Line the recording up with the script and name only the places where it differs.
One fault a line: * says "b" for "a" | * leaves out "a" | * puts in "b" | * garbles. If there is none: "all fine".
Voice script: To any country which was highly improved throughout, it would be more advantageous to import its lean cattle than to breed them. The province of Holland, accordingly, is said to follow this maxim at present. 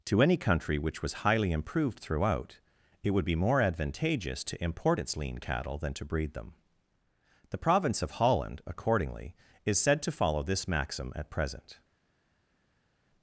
all fine